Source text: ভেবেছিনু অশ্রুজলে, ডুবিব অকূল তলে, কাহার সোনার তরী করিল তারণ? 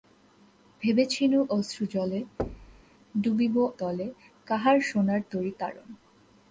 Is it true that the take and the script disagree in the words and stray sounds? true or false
true